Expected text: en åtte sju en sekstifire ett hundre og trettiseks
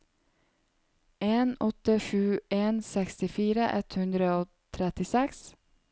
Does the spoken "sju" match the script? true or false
true